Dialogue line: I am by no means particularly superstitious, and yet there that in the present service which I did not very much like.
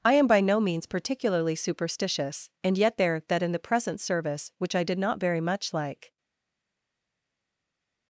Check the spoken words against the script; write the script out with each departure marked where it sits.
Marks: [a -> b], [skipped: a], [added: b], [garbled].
I am by no means particularly superstitious, and yet there that in the present service which I did not very much like.